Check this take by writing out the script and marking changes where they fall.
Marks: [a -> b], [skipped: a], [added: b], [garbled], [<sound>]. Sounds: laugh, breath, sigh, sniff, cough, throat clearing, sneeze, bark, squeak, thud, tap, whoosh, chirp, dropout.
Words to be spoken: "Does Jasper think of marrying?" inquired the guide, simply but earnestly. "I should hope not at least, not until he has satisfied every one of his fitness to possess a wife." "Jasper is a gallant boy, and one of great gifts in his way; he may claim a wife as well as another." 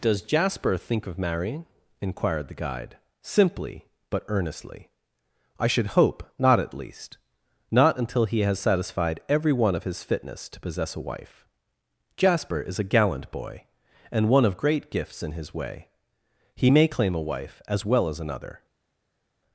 "Does Jasper think of marrying?" inquired the guide, simply but earnestly. "I should hope not at least, not until he has satisfied every one of his fitness to possess a wife." "Jasper is a gallant boy, and one of great gifts in his way; he may claim a wife as well as another."